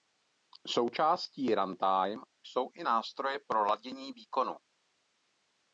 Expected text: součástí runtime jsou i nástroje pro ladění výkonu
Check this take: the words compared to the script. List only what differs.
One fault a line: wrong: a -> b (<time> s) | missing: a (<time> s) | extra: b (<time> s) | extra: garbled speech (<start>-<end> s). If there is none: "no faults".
no faults